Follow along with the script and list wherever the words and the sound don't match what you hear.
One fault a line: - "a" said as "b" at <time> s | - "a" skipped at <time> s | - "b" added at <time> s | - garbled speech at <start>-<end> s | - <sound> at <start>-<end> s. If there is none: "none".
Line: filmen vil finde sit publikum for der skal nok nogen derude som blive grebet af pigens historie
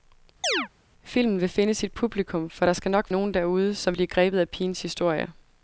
- chirp at 0.4-0.7 s